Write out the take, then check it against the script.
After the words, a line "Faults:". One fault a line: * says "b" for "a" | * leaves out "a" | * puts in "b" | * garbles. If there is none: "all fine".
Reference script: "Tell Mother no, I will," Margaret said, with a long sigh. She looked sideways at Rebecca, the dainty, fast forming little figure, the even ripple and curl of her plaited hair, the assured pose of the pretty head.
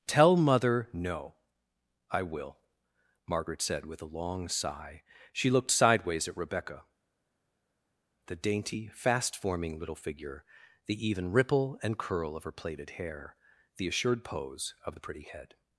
"Tell Mother no, I will," Margaret said, with a long sigh. She looked sideways at Rebecca, the dainty, fast forming little figure, the even ripple and curl of her plaited hair, the assured pose of the pretty head.
Faults:
all fine